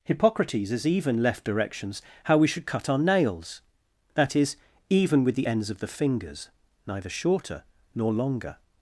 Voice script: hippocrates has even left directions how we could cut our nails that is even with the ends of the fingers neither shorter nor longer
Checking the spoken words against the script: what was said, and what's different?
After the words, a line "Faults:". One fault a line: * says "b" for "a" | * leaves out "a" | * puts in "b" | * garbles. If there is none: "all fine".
hippocrates has even left directions how we should cut our nails that is even with the ends of the fingers neither shorter nor longer
Faults:
* says "should" for "could"